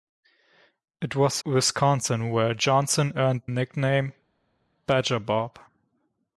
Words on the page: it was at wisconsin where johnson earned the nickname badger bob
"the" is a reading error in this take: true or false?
true